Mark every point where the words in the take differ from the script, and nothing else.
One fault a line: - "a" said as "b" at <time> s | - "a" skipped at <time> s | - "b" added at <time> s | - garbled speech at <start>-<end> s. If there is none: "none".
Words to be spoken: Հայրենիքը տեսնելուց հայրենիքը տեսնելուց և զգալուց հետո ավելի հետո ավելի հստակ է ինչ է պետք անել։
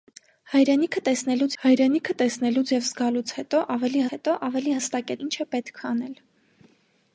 none